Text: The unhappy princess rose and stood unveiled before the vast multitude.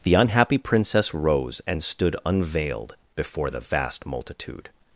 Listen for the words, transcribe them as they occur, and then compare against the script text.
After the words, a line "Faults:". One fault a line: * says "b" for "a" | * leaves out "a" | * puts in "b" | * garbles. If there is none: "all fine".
The unhappy princess rose and stood unveiled before the vast multitude.
Faults:
all fine